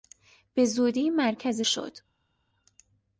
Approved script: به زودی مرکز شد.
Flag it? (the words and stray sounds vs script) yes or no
no